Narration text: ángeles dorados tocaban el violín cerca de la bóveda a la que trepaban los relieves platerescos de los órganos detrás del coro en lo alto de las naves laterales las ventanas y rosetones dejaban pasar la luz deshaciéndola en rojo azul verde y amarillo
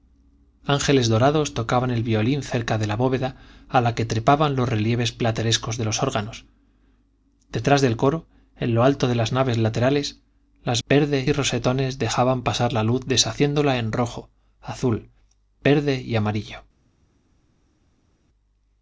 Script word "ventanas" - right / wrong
wrong